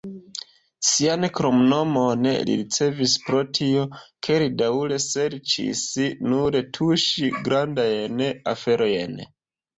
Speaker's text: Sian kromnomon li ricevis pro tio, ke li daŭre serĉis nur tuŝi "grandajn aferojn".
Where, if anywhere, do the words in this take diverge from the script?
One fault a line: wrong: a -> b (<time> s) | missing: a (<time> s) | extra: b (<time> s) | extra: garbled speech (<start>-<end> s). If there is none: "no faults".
no faults